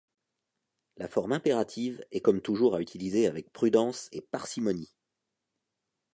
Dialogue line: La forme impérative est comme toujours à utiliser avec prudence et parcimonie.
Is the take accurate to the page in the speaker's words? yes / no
yes